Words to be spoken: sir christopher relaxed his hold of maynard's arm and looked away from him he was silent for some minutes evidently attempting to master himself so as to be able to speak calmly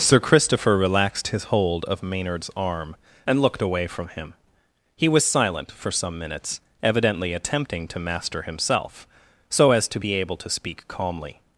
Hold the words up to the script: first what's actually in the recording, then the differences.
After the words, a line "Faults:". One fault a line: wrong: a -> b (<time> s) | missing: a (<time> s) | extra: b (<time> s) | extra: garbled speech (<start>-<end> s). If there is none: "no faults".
sir christopher relaxed his hold of maynard's arm and looked away from him he was silent for some minutes evidently attempting to master himself so as to be able to speak calmly
Faults:
no faults